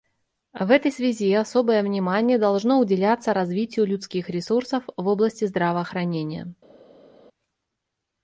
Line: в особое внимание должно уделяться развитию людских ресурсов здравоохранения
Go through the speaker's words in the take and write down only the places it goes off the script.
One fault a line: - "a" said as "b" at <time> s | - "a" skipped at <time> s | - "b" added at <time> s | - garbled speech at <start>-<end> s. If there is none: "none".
- "этой связи" added at 0.7 s
- "в области" added at 4.9 s